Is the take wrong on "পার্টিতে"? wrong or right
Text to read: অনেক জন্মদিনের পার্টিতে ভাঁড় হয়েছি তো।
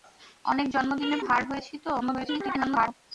wrong